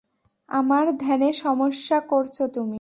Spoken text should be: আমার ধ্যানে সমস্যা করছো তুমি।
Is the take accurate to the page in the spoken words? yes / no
yes